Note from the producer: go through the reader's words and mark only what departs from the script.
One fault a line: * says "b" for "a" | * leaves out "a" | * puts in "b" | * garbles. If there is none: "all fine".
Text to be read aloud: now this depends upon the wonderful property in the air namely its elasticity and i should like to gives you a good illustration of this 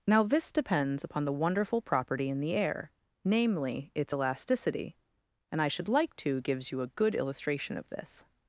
all fine